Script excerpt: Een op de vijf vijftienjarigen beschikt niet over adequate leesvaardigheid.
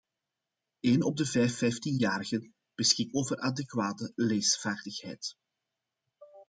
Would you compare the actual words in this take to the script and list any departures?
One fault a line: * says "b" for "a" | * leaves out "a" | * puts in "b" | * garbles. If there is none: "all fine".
* leaves out "niet"